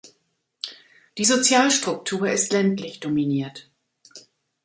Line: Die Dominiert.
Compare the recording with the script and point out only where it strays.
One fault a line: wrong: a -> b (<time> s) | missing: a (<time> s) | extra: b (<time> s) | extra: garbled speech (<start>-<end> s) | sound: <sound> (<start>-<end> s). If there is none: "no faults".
extra: Sozialstruktur ist ländlich (1.2 s)